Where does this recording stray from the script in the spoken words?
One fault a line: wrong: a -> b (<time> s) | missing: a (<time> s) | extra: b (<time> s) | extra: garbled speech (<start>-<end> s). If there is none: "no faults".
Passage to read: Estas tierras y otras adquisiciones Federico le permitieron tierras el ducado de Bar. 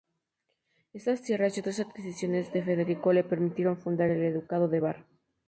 extra: de (2.5 s)
wrong: tierras -> fundar (3.8 s)